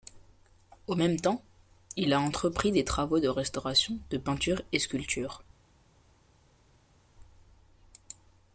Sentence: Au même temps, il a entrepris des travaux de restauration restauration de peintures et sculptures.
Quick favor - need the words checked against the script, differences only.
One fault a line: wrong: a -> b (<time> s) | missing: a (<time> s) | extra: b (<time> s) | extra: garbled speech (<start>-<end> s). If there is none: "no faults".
missing: restauration (4.0 s)